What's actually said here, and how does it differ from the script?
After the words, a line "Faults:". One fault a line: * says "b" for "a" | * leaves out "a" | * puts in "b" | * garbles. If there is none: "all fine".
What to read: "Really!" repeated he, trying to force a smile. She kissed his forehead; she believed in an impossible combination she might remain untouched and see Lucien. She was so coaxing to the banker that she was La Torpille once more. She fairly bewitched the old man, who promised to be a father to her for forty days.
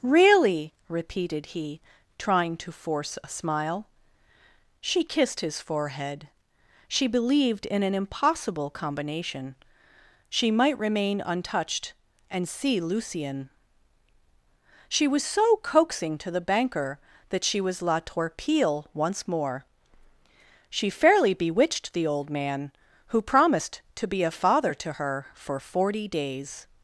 "Really!" repeated he, trying to force a smile. She kissed his forehead; she believed in an impossible combination she might remain untouched and see Lucien. She was so coaxing to the banker that she was La Torpille once more. She fairly bewitched the old man, who promised to be a father to her for forty days.
Faults:
all fine